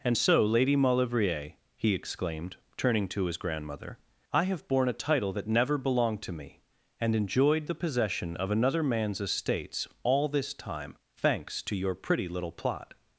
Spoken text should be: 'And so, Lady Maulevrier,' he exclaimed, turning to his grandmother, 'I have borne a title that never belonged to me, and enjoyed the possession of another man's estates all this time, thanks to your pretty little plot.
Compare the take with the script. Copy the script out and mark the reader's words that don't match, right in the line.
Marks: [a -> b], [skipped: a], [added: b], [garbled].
'And so, Lady Maulevrier,' he exclaimed, turning to his grandmother, 'I have borne a title that never belonged to me, and enjoyed the possession of another man's estates all this time, thanks to your pretty little plot.